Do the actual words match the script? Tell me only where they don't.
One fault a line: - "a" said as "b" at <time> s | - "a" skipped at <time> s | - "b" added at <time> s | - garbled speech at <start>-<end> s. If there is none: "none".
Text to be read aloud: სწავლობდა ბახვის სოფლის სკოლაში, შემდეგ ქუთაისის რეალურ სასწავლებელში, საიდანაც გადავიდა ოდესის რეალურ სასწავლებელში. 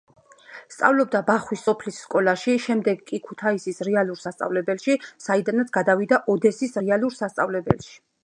- "კი" added at 3.1 s